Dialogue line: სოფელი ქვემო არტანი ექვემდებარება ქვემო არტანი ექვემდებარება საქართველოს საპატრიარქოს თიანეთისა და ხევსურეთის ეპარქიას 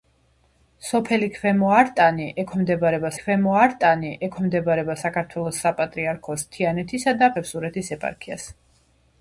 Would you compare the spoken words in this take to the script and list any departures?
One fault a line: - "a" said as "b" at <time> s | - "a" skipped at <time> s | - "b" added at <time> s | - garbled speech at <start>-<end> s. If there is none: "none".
none